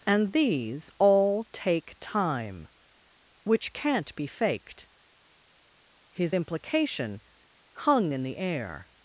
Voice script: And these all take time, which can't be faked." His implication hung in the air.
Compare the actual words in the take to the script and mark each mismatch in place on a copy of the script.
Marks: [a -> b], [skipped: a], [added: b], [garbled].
And these all take time, which can't be faked." His implication hung in the air.